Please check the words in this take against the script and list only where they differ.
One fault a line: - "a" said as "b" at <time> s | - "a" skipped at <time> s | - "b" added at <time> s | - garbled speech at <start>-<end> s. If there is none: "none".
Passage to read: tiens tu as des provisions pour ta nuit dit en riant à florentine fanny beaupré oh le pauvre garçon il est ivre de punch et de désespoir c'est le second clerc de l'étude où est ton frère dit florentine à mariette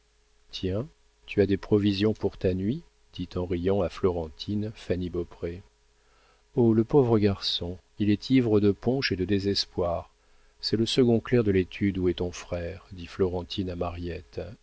none